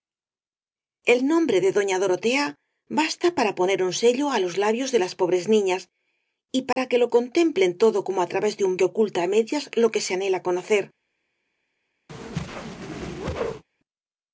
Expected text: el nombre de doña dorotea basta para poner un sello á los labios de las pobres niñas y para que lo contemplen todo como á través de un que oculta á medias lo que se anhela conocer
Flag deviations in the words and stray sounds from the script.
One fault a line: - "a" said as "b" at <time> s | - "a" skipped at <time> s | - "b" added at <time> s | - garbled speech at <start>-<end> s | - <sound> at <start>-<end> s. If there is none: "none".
- dropout at 6.7-6.8 s
- whoosh at 12.1-13.6 s